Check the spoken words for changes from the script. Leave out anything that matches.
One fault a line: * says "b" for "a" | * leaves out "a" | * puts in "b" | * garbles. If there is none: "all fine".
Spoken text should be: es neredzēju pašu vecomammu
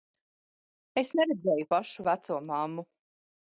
all fine